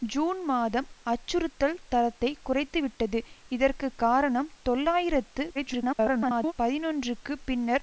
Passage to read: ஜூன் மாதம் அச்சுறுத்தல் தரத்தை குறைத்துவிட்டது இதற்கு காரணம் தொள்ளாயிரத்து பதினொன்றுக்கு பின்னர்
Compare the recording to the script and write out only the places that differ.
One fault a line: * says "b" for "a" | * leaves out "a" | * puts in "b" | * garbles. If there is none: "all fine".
* garbles